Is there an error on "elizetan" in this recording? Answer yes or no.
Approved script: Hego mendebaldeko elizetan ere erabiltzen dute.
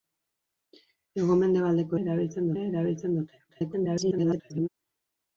yes